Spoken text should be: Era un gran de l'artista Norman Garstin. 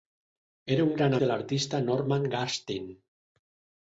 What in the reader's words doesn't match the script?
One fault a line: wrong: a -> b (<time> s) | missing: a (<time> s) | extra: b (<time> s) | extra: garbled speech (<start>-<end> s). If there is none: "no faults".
no faults